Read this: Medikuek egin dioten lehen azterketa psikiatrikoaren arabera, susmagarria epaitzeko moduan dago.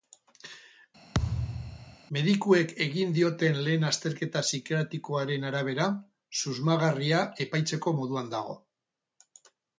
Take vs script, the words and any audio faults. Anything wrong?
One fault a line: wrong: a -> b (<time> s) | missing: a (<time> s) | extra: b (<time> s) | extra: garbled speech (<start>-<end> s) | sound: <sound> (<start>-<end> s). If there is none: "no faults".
sound: thud (1.1-2.0 s)